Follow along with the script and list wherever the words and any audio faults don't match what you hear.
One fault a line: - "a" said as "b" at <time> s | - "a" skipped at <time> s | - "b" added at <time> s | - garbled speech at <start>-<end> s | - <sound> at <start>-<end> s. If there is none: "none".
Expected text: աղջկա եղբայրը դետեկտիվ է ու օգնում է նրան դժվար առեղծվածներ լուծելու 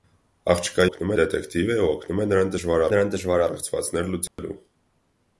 - "եղբայրը" said as "օգնում" at 0.9 s
- "նրան դժվար" added at 2.9 s
- dropout at 4.3-4.4 s